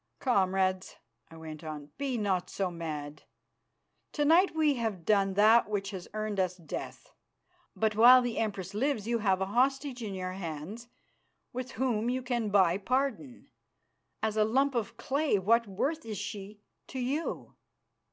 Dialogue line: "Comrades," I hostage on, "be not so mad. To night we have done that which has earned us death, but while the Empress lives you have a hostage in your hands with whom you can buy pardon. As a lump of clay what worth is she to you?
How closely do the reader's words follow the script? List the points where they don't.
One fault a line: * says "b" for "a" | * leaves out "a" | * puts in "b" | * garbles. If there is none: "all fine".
* says "went" for "hostage"